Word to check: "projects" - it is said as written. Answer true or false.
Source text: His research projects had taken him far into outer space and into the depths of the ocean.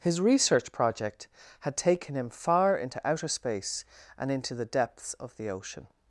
false